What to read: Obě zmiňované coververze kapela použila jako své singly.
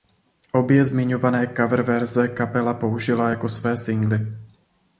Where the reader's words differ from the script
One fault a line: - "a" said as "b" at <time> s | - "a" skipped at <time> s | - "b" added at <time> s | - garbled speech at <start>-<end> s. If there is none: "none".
none